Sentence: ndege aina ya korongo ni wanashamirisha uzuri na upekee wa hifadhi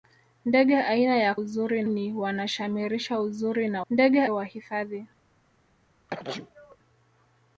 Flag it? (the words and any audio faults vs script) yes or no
yes